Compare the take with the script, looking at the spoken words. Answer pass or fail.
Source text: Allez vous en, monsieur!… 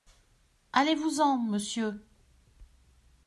pass